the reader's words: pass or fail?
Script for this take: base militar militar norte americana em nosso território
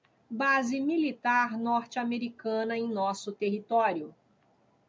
fail